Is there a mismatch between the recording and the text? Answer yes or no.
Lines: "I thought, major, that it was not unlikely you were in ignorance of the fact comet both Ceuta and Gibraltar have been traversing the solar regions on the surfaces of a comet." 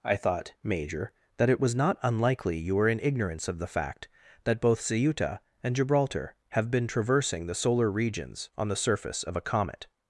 yes